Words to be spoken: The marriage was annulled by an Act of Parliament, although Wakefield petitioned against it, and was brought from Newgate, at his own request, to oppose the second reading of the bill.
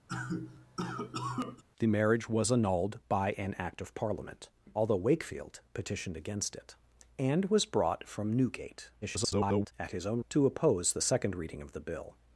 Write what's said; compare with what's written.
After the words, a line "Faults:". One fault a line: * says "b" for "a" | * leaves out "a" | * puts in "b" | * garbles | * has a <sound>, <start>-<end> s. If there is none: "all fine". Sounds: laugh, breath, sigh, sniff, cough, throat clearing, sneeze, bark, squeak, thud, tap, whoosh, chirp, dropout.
The marriage was annulled by an Act of Parliament, although Wakefield petitioned against it, and was brought from Newgate, [garbled] at his own to oppose the second reading of the bill.
Faults:
* has a cough, 0.1-1.6 s
* garbles
* leaves out "request"